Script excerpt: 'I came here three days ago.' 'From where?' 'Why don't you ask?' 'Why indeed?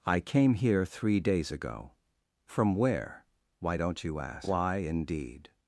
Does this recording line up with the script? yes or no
yes